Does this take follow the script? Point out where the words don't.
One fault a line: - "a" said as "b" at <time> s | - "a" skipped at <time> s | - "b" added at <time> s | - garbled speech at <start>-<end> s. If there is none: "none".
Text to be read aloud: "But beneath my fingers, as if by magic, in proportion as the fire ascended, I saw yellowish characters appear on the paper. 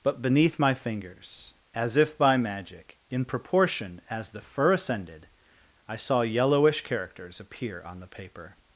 - "fire" said as "fur" at 4.4 s